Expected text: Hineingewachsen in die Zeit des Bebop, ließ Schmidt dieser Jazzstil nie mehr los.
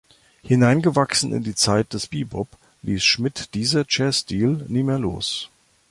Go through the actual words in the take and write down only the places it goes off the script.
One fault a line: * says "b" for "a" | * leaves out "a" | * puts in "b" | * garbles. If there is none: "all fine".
all fine